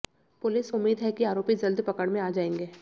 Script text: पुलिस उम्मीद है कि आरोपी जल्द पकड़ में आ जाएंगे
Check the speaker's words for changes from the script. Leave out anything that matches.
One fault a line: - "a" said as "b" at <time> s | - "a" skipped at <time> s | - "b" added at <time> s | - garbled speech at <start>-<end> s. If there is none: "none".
none